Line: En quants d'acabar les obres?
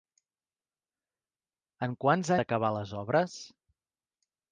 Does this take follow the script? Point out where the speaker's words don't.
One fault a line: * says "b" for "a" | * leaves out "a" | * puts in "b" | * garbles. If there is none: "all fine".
all fine